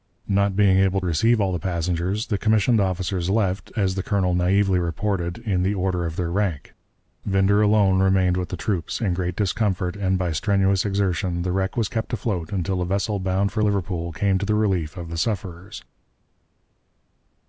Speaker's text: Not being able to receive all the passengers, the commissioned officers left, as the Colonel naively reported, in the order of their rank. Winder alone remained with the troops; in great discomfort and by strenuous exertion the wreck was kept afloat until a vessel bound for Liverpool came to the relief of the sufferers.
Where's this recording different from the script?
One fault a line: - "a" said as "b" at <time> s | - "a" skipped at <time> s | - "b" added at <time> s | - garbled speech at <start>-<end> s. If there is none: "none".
- "to" skipped at 1.0 s